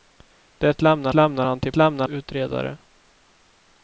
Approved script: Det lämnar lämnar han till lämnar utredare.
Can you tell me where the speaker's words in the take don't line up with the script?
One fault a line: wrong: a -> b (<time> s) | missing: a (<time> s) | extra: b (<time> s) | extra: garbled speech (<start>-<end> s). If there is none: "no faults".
no faults